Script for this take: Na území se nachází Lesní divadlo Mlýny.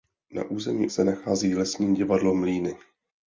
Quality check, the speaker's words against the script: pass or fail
pass